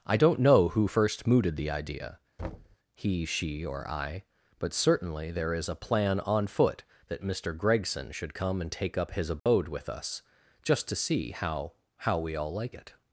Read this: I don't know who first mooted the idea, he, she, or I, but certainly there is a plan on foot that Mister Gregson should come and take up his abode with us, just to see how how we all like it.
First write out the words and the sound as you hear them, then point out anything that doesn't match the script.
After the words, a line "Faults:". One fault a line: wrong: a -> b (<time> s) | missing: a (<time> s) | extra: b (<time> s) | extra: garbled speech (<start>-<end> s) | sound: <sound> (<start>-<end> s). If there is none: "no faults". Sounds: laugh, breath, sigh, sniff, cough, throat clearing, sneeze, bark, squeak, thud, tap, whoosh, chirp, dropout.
I don't know who first mooted the idea, he, she, or I, but certainly there is a plan on foot that Mister Gregson should come and take up his abode with us, just to see how how we all like it.
Faults:
sound: thud (2.4-2.8 s)
sound: dropout (9.4-9.5 s)